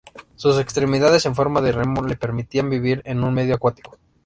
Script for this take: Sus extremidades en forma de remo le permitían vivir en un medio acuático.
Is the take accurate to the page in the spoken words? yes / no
yes